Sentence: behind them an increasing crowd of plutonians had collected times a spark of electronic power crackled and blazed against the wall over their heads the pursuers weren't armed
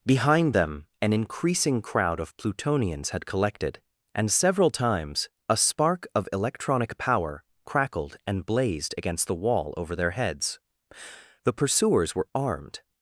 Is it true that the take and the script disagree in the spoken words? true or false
true